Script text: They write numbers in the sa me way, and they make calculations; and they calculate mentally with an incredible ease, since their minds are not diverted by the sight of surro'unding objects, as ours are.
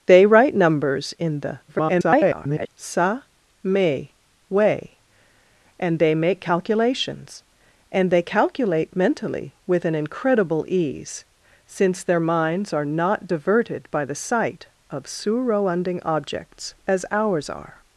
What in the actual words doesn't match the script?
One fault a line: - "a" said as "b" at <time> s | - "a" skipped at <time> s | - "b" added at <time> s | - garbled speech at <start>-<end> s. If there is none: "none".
- garbled speech at 1.7-2.7 s